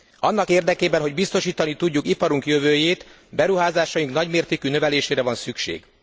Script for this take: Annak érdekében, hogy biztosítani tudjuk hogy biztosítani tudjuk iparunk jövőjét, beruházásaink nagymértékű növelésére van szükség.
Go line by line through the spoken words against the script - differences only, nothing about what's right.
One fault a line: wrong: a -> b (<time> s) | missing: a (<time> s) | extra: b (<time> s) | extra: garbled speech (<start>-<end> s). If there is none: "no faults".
missing: hogy biztosítani tudjuk (2.1 s)